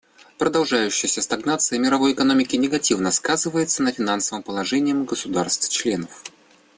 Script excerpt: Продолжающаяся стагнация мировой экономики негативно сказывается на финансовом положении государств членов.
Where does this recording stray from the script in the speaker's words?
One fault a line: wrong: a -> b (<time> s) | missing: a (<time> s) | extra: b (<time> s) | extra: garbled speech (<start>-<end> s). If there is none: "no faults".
no faults